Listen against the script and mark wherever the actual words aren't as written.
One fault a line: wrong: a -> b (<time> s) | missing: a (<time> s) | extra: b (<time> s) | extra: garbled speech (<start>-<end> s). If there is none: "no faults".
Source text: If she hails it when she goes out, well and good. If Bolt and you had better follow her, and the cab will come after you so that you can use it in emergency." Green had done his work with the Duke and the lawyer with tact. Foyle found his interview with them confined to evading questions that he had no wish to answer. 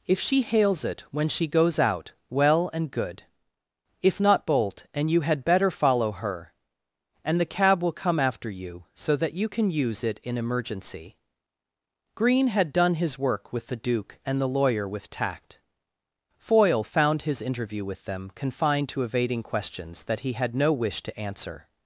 extra: not (4.2 s)